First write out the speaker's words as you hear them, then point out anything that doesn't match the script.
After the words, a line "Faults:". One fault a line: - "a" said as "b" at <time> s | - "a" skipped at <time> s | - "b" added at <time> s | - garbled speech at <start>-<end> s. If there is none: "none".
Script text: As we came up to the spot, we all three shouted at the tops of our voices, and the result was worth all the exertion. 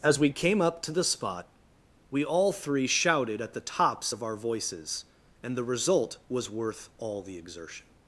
As we came up to the spot, we all three shouted at the tops of our voices, and the result was worth all the exertion.
Faults:
none